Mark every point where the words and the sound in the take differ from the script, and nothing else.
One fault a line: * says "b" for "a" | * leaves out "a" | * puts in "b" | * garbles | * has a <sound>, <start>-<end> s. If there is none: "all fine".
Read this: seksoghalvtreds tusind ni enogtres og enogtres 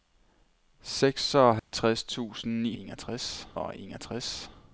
* has a dropout, 1.6-1.7 s